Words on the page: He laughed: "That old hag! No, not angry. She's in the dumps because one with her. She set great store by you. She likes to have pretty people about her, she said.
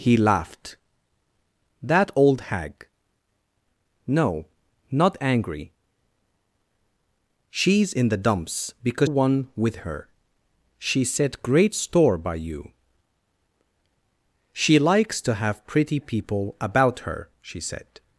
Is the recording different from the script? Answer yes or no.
no